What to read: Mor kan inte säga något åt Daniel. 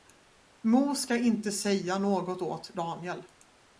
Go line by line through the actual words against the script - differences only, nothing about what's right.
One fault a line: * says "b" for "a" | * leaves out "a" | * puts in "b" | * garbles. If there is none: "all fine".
* says "ska" for "kan"